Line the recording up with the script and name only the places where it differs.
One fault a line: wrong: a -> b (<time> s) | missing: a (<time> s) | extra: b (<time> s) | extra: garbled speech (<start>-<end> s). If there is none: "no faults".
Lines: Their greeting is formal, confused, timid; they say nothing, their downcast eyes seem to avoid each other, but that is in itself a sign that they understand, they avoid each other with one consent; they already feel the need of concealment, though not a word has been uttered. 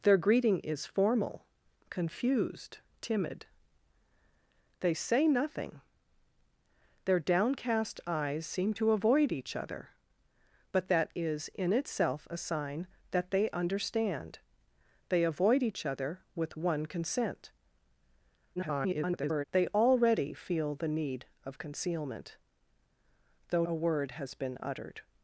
extra: garbled speech (18.6-19.4 s)
missing: not (23.6 s)